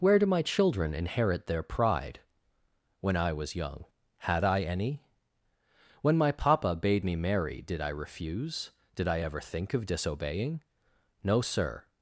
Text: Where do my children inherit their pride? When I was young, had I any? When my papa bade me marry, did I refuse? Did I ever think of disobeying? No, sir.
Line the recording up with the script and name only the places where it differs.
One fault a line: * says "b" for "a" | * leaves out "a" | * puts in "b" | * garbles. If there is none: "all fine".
all fine